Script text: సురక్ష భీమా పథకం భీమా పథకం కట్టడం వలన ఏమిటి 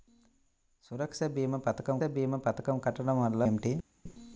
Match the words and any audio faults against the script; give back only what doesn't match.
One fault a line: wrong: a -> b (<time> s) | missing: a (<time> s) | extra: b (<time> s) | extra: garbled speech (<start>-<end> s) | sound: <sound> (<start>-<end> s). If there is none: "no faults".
no faults